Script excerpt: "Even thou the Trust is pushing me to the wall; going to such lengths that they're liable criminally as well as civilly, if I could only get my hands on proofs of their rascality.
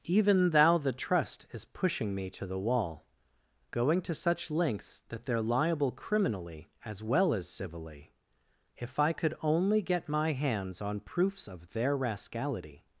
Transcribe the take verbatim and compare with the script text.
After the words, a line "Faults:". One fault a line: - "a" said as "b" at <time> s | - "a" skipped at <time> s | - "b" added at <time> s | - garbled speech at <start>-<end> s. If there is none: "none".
"Even thou the Trust is pushing me to the wall; going to such lengths that they're liable criminally as well as civilly, if I could only get my hands on proofs of their rascality.
Faults:
none